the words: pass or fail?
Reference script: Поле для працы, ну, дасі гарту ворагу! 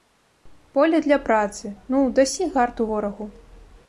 pass